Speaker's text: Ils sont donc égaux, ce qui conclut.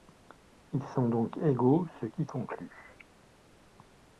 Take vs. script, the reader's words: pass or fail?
pass